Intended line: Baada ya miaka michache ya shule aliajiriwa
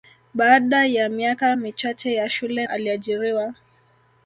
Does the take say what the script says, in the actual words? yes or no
yes